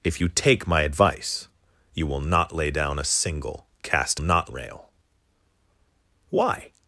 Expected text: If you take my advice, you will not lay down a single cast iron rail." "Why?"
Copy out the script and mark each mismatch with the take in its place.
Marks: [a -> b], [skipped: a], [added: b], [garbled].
If you take my advice, you will not lay down a single cast [iron -> not] rail." "Why?"